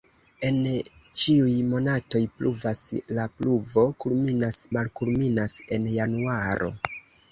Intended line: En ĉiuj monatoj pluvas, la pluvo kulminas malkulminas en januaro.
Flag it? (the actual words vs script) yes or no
no